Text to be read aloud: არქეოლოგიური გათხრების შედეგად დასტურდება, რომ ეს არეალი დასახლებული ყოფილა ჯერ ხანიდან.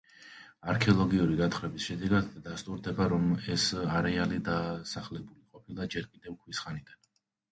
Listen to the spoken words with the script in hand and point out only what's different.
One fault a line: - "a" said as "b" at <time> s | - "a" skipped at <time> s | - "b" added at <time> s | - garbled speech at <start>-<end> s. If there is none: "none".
- "კიდევ ქვის" added at 6.2 s